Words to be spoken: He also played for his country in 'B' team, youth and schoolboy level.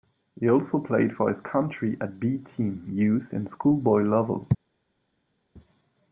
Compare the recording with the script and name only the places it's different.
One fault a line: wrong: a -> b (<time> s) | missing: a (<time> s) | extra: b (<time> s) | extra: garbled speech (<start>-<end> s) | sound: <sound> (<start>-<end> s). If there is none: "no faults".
wrong: in -> at (2.0 s)